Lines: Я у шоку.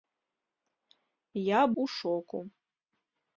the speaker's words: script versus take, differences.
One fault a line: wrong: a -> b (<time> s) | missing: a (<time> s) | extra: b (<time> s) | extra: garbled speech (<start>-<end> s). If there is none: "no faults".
no faults